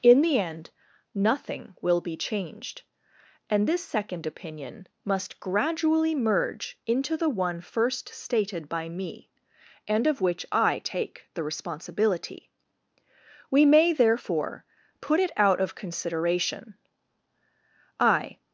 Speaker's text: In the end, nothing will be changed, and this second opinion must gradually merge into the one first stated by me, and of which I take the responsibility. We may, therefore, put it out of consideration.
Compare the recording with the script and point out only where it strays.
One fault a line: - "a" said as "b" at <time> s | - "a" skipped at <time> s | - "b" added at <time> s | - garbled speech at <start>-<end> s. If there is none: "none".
- "I" added at 18.0 s